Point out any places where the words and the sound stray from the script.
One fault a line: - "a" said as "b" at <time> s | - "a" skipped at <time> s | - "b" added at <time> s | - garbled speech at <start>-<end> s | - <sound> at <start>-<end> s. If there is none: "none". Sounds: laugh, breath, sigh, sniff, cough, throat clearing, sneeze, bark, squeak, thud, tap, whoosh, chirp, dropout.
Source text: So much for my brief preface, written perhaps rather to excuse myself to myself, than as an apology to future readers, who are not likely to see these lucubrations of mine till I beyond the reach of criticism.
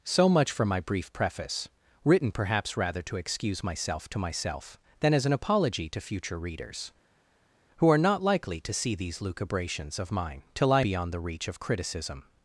none